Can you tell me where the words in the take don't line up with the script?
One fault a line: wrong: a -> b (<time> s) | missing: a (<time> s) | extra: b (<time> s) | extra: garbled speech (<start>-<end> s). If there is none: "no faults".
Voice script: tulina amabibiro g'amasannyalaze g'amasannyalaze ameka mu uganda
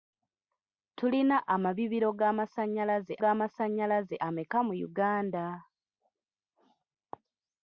no faults